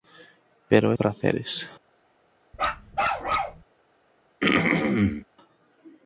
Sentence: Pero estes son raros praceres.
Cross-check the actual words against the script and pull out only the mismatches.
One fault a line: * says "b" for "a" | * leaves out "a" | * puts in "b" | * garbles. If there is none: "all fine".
* leaves out "estes son raros"